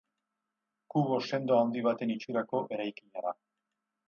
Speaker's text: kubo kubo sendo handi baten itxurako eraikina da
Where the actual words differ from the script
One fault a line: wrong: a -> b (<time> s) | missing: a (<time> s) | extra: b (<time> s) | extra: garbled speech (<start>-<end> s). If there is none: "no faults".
missing: kubo (1.2 s)